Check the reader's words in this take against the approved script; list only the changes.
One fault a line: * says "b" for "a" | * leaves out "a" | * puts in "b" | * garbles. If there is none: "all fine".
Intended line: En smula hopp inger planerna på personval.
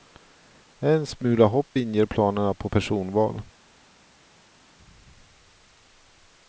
all fine